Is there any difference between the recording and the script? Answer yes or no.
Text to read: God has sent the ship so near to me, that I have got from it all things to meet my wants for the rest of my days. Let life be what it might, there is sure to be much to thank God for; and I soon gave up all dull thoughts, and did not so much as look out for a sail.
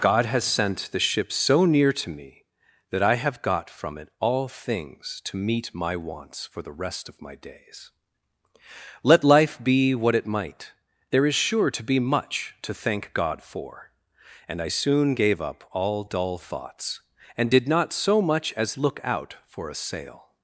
no